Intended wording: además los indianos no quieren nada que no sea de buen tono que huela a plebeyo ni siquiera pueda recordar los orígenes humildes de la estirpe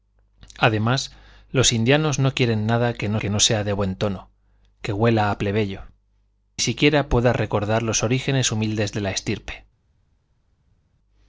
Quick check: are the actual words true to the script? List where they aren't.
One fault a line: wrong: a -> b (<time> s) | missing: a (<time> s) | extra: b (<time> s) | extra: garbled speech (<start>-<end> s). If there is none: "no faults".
extra: que no (3.2 s)
missing: ni (5.8 s)